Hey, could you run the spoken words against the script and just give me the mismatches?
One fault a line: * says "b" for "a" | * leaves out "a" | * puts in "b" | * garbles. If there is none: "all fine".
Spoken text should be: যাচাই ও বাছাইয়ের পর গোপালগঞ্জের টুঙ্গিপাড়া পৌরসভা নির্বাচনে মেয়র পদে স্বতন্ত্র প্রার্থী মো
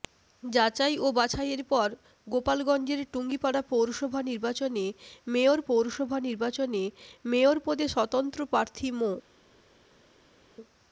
* puts in "পৌরসভা নির্বাচনে মেয়র"